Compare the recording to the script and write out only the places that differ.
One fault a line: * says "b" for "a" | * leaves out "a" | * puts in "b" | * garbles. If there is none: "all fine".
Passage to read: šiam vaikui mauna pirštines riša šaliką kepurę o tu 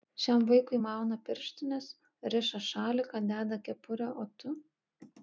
* puts in "deda"